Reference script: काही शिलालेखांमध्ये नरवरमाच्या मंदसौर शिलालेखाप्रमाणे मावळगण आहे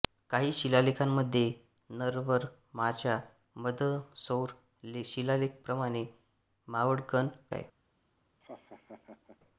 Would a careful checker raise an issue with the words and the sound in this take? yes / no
yes